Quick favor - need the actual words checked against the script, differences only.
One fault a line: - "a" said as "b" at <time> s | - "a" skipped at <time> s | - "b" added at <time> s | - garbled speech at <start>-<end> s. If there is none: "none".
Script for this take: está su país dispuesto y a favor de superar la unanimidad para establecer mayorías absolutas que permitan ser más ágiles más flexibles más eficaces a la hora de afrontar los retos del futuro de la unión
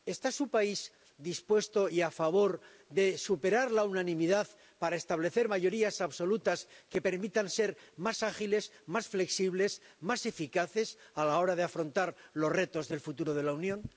none